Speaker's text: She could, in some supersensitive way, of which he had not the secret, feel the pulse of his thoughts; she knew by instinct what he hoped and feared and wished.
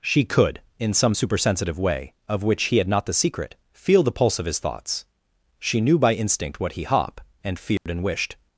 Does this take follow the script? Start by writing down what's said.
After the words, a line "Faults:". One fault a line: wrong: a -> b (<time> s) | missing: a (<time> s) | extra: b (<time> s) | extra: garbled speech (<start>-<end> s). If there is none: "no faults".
She could, in some supersensitive way, of which he had not the secret, feel the pulse of his thoughts; she knew by instinct what he hop and feared and wished.
Faults:
wrong: hoped -> hop (6.8 s)